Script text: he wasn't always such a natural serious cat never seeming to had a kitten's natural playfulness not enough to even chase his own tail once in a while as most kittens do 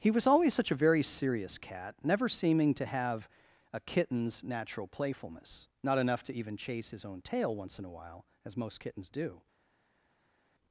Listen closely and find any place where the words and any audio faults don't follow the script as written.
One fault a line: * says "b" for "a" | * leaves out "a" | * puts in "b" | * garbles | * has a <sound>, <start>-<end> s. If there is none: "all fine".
* says "was" for "wasn't"
* says "very" for "natural"
* says "have" for "had"